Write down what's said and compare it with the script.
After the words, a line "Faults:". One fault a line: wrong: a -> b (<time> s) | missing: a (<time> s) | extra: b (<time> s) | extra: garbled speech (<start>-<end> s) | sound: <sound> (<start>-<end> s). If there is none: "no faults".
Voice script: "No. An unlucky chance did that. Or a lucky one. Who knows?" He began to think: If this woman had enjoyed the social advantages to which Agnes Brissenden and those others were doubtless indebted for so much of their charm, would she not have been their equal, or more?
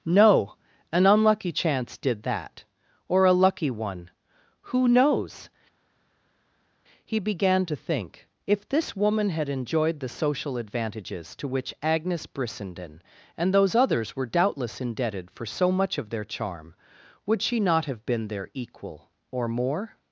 "No. An unlucky chance did that. Or a lucky one. Who knows?" He began to think: If this woman had enjoyed the social advantages to which Agnes Brissenden and those others were doubtless indebted for so much of their charm, would she not have been their equal, or more?
Faults:
no faults